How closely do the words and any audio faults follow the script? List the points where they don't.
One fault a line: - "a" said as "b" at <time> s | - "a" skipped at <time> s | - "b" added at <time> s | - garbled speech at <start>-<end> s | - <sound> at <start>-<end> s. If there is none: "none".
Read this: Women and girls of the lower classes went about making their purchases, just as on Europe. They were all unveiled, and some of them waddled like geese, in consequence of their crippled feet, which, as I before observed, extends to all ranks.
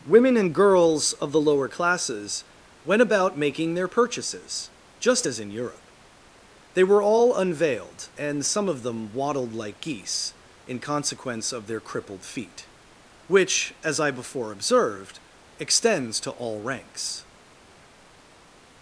- "on" said as "in" at 5.4 s